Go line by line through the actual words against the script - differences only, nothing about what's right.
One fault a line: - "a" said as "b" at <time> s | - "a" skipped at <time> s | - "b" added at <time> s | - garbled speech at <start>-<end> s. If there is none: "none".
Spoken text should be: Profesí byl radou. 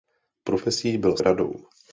none